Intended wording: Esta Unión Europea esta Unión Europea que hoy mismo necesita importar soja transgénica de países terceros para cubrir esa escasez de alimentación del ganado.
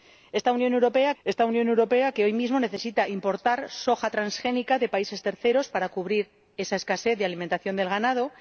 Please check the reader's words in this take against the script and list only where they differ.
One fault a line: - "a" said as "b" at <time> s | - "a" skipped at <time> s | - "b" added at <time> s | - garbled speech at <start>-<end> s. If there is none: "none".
none